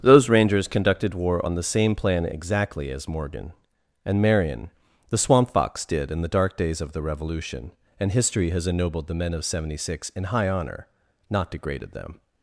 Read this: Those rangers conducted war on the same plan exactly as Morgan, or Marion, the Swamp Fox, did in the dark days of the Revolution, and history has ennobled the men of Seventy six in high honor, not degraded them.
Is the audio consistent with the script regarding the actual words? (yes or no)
no